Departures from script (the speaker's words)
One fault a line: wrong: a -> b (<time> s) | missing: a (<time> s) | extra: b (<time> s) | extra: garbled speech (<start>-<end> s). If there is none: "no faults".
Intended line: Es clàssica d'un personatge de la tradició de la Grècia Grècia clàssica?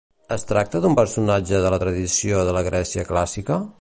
wrong: clàssica -> tracta (0.5 s)
missing: Grècia (3.1 s)